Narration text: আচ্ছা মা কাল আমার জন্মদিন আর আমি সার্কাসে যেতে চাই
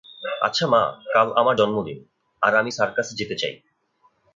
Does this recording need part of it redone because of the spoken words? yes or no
no